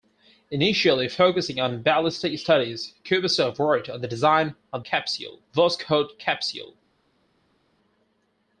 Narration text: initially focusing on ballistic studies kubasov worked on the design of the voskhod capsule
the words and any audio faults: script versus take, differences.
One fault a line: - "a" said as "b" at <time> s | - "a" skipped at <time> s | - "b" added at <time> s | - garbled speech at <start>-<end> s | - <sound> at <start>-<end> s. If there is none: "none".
- "the" said as "capsule" at 4.8 s